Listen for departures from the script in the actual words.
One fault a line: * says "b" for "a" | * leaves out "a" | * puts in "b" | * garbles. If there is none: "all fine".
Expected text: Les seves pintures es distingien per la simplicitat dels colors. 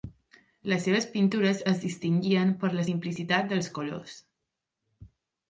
all fine